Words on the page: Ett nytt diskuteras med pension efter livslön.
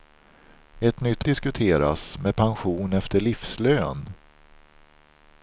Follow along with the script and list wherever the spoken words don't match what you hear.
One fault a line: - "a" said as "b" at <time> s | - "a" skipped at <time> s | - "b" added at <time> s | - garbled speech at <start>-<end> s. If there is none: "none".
none